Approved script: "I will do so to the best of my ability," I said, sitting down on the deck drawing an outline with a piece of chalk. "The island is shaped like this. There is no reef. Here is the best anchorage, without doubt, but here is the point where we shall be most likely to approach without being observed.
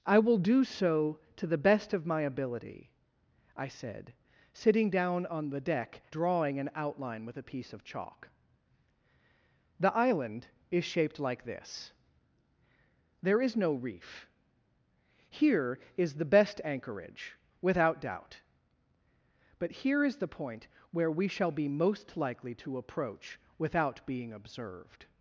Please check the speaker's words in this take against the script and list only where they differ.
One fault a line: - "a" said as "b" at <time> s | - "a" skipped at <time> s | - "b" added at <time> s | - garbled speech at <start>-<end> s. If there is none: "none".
none